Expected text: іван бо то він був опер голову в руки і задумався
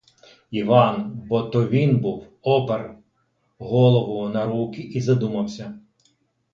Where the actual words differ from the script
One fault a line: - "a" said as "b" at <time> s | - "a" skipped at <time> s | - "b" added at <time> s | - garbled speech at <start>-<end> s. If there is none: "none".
- "в" said as "на" at 4.3 s